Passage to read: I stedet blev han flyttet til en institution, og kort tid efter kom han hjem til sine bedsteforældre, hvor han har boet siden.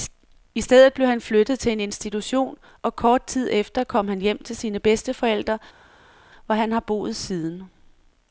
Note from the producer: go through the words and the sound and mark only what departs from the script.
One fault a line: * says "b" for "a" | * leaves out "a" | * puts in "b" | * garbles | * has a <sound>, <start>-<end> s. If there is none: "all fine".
all fine